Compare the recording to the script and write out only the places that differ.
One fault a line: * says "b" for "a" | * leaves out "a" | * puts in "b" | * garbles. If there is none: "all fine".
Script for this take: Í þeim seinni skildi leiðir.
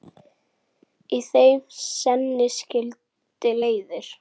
all fine